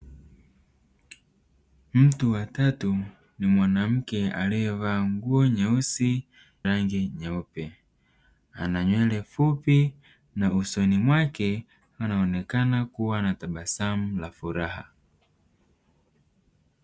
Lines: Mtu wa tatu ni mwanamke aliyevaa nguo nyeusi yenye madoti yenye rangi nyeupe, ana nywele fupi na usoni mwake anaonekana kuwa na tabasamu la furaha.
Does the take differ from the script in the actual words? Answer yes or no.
yes